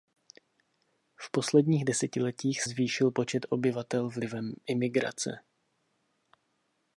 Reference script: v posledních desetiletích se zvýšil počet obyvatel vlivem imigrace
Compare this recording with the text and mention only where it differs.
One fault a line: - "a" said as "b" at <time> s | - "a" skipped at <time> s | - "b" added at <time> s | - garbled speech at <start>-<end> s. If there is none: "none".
- "se" skipped at 2.6 s